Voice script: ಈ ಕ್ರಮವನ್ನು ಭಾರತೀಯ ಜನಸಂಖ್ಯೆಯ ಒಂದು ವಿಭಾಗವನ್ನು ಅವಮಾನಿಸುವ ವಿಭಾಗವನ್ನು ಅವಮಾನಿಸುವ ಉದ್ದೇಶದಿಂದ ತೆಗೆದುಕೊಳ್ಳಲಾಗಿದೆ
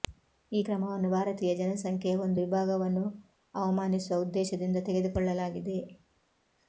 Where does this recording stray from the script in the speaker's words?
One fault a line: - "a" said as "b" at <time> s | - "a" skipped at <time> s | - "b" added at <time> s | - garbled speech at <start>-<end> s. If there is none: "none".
- "ವಿಭಾಗವನ್ನು ಅವಮಾನಿಸುವ" skipped at 4.2 s